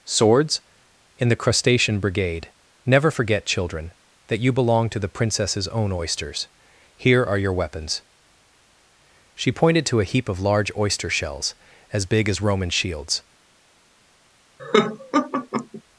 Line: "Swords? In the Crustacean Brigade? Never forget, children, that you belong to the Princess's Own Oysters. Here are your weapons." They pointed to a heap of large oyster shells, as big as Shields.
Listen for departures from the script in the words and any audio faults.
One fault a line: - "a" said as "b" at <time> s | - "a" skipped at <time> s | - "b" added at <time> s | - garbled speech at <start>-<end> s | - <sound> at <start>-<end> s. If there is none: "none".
- "They" said as "She" at 9.4 s
- "Roman" added at 12.4 s
- laugh at 14.6-15.8 s